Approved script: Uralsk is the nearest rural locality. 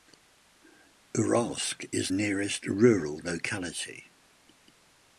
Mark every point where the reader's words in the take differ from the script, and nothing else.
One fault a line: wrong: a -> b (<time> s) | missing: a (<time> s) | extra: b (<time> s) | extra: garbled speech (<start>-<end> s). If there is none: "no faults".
missing: the (2.1 s)